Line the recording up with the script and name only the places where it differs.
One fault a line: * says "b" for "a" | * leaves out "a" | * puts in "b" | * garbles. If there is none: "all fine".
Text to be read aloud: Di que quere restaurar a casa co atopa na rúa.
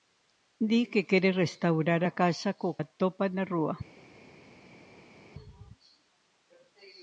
all fine